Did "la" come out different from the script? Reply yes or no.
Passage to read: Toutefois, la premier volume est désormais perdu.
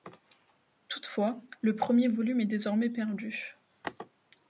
yes